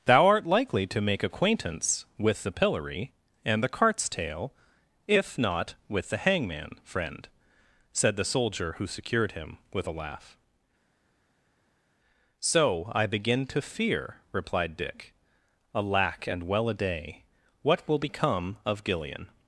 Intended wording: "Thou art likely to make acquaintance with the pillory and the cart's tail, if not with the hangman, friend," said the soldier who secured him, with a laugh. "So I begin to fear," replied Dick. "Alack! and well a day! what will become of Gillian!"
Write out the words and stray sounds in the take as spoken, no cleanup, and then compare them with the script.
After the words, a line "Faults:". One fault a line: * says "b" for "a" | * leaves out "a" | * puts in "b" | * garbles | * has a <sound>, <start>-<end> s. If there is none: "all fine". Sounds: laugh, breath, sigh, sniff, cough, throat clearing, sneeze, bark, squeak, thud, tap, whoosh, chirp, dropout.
"Thou art likely to make acquaintance with the pillory and the cart's tail, if not with the hangman, friend," said the soldier who secured him, with a laugh. "So I begin to fear," replied Dick. "Alack! and well a day! what will become of Gillian!"
Faults:
all fine